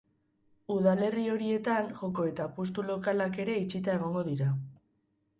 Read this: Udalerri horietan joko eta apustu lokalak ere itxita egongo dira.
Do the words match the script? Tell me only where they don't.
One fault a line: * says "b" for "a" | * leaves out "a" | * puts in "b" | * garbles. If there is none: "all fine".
all fine